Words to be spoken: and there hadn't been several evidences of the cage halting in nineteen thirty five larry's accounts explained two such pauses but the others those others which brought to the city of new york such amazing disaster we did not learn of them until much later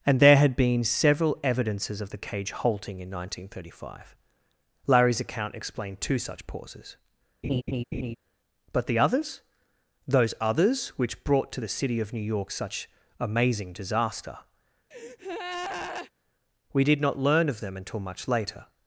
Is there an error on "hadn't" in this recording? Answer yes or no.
yes